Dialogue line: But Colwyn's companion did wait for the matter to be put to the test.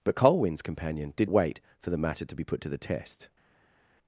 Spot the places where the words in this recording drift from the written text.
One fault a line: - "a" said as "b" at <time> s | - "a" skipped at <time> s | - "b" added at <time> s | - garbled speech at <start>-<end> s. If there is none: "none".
none